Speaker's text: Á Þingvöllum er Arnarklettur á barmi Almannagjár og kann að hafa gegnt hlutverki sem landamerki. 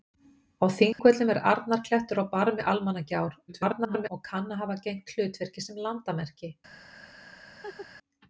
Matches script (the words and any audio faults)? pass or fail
fail